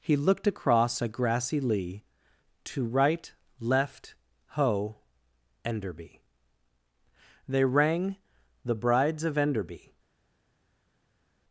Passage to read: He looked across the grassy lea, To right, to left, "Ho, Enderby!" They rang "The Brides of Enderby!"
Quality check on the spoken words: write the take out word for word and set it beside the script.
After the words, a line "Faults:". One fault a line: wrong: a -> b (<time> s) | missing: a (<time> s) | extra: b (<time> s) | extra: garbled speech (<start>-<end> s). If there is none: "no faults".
He looked across a grassy lea, To right, left, "Ho, Enderby!" They rang "The Brides of Enderby!"
Faults:
wrong: the -> a (1.0 s)
missing: to (3.3 s)